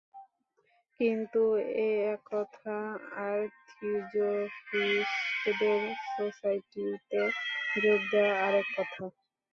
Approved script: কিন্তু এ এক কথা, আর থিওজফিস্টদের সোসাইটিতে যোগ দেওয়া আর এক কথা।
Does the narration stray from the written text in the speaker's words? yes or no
no